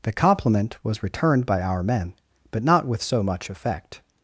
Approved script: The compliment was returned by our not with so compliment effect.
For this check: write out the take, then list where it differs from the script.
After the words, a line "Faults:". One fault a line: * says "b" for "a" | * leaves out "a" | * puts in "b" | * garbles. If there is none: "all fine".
The compliment was returned by our men, but not with so much effect.
Faults:
* puts in "men but"
* says "much" for "compliment"